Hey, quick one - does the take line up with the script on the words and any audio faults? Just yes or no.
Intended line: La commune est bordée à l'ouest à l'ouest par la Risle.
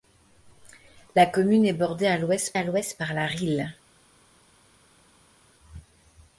yes